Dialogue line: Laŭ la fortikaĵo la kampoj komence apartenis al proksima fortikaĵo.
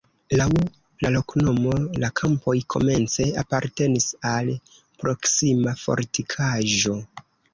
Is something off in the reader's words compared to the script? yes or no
yes